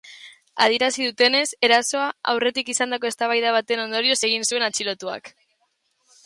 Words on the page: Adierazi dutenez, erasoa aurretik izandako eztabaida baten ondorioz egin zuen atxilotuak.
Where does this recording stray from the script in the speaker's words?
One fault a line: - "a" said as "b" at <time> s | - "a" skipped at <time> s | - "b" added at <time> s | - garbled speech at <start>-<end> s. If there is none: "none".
none